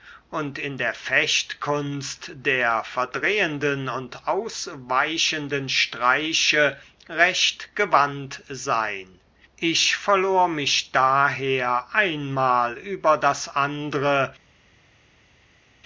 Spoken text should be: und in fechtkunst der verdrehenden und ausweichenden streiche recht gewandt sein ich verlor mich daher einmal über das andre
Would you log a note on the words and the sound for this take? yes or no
yes